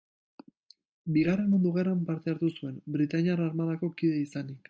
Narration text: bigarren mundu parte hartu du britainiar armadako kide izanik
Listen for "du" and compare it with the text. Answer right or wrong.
wrong